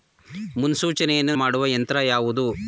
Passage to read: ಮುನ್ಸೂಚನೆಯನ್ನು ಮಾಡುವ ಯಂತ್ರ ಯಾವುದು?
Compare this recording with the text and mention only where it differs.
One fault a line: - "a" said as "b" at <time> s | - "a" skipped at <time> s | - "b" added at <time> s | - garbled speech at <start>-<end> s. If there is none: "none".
none